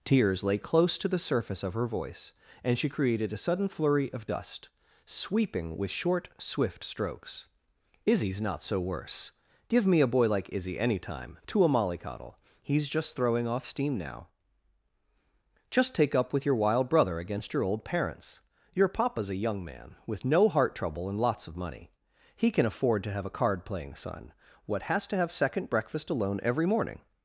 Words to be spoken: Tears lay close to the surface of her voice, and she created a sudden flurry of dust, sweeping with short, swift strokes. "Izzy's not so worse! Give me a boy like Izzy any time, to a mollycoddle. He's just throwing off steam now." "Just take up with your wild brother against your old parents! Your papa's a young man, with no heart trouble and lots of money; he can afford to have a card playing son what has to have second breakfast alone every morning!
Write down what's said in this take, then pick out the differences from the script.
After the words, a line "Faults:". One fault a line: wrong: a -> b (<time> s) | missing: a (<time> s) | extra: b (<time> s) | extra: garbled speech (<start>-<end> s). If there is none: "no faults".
Tears lay close to the surface of her voice, and she created a sudden flurry of dust, sweeping with short, swift strokes. "Izzy's not so worse! Give me a boy like Izzy any time, to a mollycoddle. He's just throwing off steam now." "Just take up with your wild brother against your old parents! Your papa's a young man, with no heart trouble and lots of money; he can afford to have a card playing son what has to have second breakfast alone every morning!
Faults:
no faults